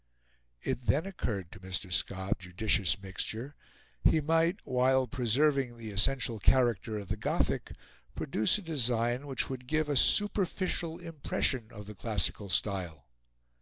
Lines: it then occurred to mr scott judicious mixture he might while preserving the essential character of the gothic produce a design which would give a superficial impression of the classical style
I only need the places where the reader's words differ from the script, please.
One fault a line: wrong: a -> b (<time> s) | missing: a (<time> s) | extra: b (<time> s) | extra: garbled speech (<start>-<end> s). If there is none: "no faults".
no faults